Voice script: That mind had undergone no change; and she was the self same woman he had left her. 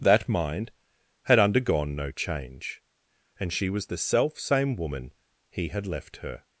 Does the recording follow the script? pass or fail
pass